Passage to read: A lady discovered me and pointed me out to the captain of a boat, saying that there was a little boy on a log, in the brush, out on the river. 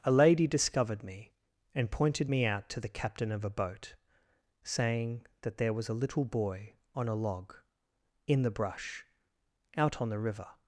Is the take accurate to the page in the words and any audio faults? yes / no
yes